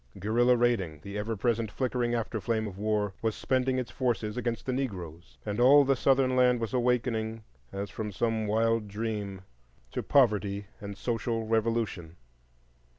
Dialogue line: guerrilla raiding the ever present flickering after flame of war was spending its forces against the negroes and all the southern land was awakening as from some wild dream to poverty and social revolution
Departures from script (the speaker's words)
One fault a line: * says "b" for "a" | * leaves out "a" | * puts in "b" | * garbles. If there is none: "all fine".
all fine